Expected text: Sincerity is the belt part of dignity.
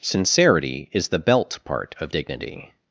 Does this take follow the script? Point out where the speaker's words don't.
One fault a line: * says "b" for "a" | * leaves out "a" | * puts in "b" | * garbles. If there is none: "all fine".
all fine